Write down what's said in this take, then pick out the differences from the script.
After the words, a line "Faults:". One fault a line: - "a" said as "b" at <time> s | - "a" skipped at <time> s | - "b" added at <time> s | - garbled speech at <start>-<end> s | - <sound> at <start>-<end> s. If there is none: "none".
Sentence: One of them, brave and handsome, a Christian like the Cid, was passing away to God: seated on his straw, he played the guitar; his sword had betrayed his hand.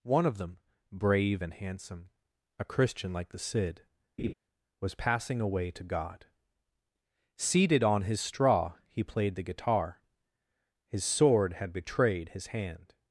One of them, brave and handsome, a Christian like the Cid, was passing away to God: seated on his straw, he played the guitar; his sword had betrayed his hand.
Faults:
- laugh at 4.2-4.3 s